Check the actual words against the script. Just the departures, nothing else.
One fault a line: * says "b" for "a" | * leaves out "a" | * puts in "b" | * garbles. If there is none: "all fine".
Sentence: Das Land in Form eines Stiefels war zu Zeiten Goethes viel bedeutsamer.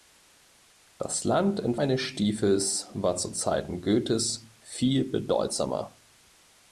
* leaves out "Form"